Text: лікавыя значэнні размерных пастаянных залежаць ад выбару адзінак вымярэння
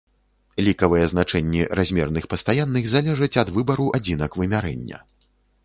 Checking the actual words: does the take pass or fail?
pass